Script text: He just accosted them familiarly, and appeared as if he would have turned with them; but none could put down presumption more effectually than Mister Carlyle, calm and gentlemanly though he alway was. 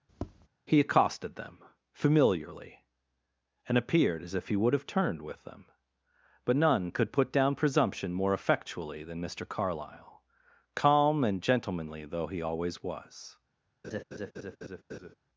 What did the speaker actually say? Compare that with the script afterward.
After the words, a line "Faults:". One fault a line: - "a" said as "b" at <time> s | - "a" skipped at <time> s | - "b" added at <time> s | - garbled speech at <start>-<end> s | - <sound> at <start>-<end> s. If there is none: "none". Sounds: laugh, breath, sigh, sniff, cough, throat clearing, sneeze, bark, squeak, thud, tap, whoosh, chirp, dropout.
He accosted them familiarly, and appeared as if he would have turned with them; but none could put down presumption more effectually than Mister Carlyle, calm and gentlemanly though he always was.
Faults:
- tap at 0.1-0.5 s
- "just" skipped at 0.8 s
- "alway" said as "always" at 12.4 s
- laugh at 13.8-15.1 s